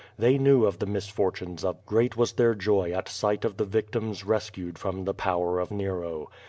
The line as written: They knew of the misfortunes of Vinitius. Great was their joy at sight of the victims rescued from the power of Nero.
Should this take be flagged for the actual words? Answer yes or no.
yes